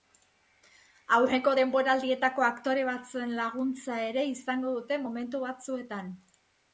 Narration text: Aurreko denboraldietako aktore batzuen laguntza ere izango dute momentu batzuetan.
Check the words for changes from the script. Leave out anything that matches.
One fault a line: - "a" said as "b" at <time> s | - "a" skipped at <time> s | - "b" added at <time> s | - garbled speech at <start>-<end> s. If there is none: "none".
none